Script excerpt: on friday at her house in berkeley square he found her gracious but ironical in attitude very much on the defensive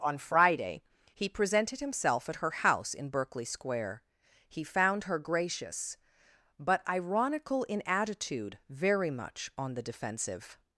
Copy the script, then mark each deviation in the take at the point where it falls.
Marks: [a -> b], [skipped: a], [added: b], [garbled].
on friday [added: he presented himself] at her house in berkeley square he found her gracious but ironical in attitude very much on the defensive